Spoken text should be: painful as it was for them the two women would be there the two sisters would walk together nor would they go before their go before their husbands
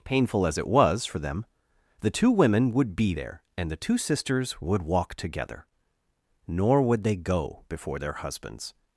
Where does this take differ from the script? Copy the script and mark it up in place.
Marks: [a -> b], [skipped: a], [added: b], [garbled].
painful as it was for them the two women would be there [added: and] the two sisters would walk together nor would they go before their [skipped: go before their] husbands